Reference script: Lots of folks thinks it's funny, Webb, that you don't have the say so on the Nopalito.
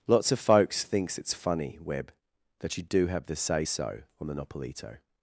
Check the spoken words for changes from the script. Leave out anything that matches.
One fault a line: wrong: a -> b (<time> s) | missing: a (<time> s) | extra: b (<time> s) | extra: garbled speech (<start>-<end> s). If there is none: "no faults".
wrong: don't -> do (2.8 s)